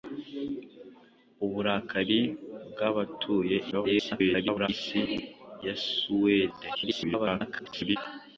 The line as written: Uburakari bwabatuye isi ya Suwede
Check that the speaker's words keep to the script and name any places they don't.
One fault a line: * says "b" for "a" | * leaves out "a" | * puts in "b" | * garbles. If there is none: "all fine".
* garbles
* garbles